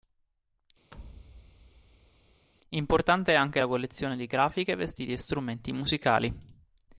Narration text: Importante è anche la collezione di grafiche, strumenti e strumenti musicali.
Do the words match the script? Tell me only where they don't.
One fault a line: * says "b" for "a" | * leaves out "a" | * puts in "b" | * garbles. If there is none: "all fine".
* says "vestiti" for "strumenti"